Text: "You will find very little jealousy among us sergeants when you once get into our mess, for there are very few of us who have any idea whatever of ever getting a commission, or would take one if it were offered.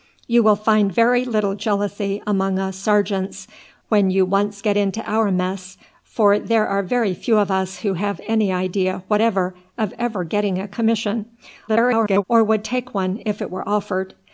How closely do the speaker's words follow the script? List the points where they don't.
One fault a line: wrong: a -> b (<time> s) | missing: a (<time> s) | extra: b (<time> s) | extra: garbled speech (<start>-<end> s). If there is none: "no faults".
extra: garbled speech (11.7-12.2 s)